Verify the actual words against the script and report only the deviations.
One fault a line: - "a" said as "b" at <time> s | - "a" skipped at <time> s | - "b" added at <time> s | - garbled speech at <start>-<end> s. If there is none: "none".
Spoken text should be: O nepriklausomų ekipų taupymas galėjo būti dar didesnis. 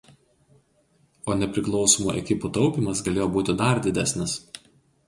none